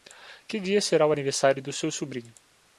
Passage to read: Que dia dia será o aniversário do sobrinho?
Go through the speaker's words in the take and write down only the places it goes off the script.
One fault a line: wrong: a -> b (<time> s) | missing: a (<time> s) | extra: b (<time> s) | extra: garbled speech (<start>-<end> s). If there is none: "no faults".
missing: dia (0.8 s)
extra: seu (1.7 s)